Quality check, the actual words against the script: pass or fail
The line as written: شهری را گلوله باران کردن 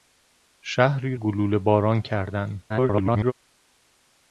fail